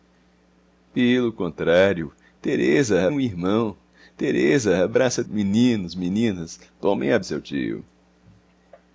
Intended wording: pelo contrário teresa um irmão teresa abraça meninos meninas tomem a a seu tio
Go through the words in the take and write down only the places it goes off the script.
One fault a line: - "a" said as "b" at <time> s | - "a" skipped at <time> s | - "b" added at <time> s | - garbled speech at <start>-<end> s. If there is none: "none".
none